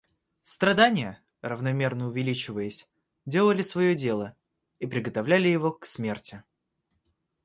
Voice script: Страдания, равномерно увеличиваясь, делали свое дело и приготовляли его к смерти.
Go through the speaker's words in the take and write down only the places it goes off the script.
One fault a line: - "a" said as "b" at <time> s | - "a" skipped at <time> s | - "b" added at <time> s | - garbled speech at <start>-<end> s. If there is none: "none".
none